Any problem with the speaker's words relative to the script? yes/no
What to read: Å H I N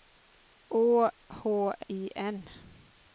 no